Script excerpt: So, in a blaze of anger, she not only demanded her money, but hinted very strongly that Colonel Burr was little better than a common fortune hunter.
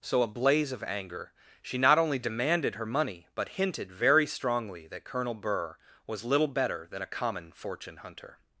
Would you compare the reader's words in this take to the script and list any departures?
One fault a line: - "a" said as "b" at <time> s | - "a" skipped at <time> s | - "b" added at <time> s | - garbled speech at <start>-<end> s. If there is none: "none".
- "in" skipped at 0.2 s